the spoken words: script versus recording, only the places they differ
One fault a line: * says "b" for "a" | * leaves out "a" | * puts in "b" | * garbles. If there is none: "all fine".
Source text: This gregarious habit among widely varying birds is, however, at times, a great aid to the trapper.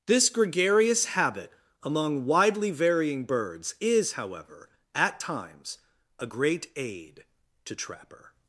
* leaves out "the"